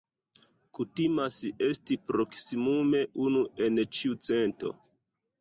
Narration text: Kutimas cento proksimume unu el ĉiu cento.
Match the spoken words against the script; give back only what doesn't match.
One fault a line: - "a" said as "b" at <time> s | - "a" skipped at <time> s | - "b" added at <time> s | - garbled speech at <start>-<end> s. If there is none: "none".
- "cento" said as "esti" at 1.6 s
- "el" said as "en" at 3.7 s